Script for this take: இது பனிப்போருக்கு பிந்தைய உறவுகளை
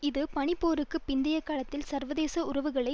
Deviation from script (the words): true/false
true